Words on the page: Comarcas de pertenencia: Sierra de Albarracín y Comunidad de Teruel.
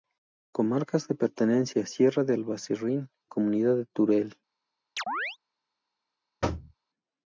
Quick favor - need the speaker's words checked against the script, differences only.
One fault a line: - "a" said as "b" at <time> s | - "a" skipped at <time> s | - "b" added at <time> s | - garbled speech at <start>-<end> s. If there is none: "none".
- "y" skipped at 3.1 s